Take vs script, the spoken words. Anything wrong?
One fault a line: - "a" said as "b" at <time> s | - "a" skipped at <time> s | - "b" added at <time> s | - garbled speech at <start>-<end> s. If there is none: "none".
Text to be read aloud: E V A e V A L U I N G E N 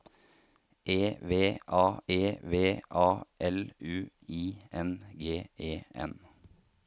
none